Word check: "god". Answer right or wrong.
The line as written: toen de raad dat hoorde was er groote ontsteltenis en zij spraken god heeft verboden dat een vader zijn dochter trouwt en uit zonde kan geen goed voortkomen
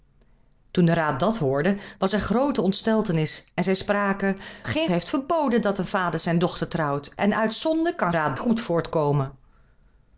wrong